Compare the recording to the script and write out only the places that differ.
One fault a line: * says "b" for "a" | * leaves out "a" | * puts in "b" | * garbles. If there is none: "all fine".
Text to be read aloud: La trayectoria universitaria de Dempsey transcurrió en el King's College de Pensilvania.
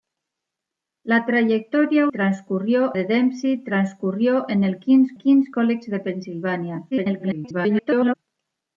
* says "transcurrió" for "universitaria"
* puts in "King's"
* garbles